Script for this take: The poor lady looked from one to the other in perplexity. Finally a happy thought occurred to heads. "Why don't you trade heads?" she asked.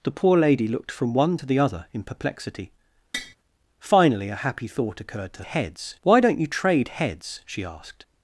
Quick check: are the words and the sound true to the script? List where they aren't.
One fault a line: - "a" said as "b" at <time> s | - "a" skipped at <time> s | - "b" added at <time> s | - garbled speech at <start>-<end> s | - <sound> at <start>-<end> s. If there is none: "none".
- tap at 3.1-3.4 s